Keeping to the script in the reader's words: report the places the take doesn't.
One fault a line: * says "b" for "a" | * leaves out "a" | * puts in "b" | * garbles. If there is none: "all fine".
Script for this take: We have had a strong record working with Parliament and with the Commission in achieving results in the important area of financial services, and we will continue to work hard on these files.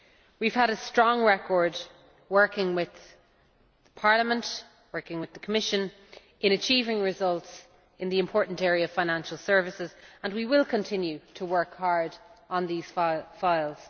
all fine